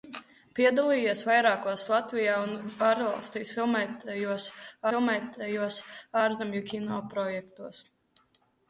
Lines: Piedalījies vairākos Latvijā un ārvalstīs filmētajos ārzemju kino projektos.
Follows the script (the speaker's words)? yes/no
no